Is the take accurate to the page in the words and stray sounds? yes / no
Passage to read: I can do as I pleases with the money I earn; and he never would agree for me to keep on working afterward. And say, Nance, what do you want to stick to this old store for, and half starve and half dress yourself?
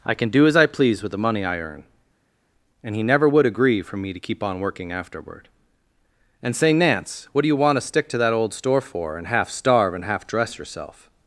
no